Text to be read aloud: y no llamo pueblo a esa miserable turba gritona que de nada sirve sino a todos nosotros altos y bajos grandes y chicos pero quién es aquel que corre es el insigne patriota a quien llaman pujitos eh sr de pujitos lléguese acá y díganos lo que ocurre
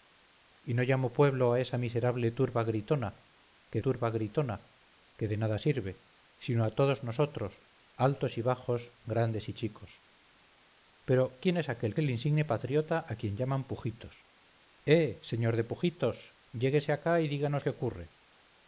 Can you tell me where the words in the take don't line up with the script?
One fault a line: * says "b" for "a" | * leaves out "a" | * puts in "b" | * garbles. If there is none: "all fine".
* puts in "turba gritona que"
* leaves out "que corre es"
* leaves out "lo"